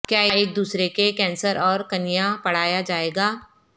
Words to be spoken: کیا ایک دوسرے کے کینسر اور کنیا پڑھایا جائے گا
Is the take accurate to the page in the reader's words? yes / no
yes